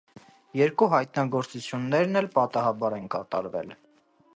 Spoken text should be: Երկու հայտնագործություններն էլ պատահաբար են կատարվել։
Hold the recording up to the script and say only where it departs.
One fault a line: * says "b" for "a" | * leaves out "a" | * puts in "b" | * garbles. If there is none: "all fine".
all fine